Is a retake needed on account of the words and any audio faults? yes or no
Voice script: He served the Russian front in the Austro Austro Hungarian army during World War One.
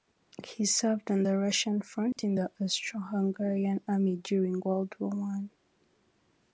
yes